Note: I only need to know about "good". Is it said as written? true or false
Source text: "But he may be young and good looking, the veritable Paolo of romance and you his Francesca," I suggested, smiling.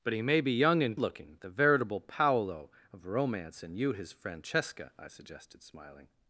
false